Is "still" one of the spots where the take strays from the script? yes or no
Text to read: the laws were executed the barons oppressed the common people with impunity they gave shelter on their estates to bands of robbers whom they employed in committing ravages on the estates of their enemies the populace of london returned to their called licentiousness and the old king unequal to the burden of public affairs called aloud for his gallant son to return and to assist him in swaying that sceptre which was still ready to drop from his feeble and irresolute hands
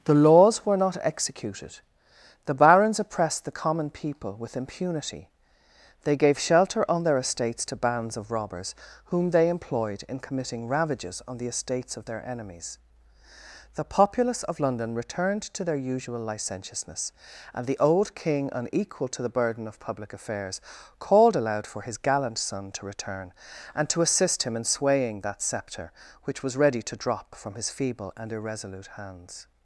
yes